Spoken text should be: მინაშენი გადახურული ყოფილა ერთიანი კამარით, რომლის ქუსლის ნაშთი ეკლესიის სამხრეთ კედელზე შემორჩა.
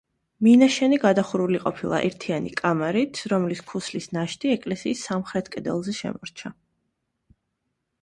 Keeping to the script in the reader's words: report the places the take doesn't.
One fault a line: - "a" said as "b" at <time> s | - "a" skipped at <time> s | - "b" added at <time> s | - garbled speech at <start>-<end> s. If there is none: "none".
none